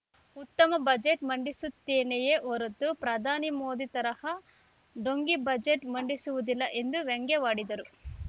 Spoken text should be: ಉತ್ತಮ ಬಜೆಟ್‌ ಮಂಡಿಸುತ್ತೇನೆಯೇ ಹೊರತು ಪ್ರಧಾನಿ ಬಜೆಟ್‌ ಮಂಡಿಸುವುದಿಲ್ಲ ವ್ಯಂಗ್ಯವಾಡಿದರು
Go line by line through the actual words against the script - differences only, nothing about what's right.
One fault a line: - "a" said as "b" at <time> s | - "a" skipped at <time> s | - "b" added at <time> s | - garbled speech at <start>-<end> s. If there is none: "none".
- "ಮೋದಿ ತರಹ ಢೋಂಗಿ" added at 3.6 s
- "ಎಂದು" added at 6.8 s